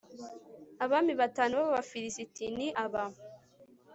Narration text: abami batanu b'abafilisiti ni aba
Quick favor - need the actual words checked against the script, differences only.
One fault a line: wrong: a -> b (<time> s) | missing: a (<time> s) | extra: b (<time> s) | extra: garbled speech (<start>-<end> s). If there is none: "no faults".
no faults